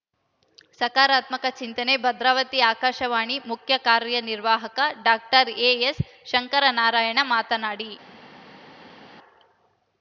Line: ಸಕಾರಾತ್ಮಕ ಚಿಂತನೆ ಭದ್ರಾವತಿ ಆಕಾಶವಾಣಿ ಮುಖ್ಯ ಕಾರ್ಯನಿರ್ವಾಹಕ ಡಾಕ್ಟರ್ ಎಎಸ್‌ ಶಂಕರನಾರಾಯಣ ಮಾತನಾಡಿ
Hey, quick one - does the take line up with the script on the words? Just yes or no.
yes